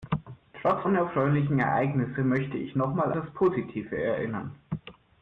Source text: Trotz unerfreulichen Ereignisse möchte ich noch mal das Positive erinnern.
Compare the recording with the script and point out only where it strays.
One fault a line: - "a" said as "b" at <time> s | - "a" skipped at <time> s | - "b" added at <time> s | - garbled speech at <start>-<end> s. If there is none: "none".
none